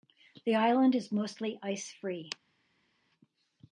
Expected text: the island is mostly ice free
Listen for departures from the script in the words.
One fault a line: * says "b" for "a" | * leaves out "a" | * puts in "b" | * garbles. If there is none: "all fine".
all fine